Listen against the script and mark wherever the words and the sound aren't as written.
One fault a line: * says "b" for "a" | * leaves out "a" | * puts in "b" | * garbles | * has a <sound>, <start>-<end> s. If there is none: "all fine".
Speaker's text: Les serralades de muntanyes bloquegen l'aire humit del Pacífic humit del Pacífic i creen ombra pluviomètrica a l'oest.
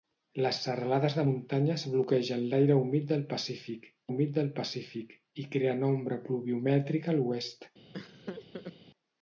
* has a laugh, 7.9-8.8 s